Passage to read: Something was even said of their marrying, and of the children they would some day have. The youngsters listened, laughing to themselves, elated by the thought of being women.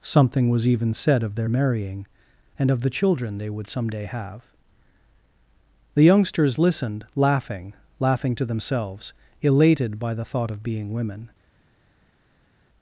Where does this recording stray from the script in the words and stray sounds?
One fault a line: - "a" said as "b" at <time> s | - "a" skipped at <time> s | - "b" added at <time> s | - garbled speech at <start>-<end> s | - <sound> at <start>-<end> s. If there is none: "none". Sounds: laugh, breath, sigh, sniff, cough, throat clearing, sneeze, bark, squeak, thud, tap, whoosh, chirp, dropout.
- "laughing" added at 8.0 s